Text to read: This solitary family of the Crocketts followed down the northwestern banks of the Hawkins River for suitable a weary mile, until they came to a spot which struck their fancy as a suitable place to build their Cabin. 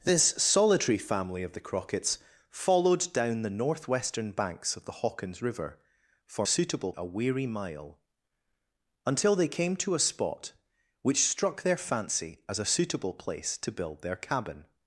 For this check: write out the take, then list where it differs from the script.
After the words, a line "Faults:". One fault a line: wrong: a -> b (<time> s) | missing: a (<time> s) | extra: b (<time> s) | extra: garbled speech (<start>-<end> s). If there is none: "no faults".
This solitary family of the Crocketts followed down the northwestern banks of the Hawkins River for suitable a weary mile, until they came to a spot which struck their fancy as a suitable place to build their Cabin.
Faults:
no faults